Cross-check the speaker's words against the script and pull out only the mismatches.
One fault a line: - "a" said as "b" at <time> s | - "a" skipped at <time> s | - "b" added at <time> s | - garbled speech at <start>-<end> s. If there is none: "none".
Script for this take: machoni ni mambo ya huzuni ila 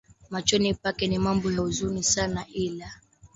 - "pake" added at 0.7 s
- "sana" added at 2.0 s